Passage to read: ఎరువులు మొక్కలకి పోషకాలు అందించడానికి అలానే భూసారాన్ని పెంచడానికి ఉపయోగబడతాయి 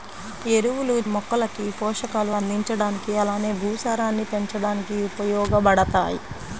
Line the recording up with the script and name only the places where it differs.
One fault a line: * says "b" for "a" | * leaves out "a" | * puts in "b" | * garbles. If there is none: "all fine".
all fine